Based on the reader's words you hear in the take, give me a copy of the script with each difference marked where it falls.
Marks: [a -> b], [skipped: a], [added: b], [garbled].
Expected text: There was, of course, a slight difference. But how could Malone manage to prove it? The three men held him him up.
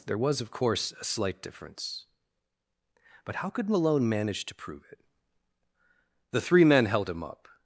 There was, of course, a slight difference. But how could Malone manage to prove it? The three men held him [skipped: him] up.